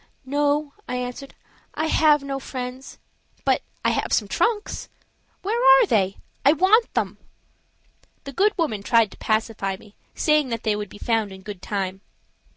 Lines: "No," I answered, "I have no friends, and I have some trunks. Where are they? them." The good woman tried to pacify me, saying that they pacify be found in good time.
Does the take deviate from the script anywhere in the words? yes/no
yes